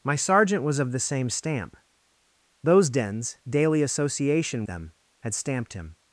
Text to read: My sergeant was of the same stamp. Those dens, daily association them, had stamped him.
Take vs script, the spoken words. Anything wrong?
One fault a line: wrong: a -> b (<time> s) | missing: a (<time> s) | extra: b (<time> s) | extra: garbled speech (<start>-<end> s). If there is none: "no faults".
no faults